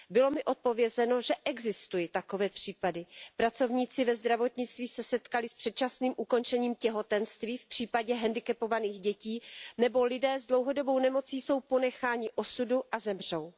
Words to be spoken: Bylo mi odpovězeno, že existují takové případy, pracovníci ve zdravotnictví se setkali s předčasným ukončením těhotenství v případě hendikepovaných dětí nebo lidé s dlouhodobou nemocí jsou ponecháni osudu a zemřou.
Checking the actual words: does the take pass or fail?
pass